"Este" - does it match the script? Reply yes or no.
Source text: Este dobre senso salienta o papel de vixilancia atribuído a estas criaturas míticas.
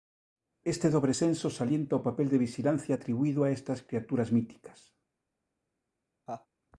yes